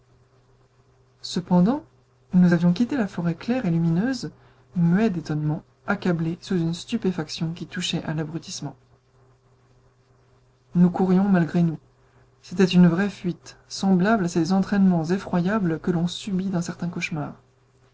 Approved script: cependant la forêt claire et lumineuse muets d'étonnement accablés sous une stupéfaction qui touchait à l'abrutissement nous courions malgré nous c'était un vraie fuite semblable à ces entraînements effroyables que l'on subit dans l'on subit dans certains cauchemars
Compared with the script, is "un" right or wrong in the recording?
wrong